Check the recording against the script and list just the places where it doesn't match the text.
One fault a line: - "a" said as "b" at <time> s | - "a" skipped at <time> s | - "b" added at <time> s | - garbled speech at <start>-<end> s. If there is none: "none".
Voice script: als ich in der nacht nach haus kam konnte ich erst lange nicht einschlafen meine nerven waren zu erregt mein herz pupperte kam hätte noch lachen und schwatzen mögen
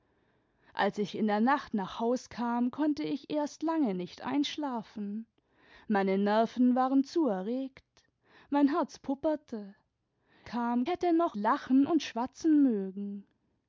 none